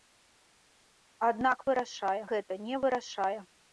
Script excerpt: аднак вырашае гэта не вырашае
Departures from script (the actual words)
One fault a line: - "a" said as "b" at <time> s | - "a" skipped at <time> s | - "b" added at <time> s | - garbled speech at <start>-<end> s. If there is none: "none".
none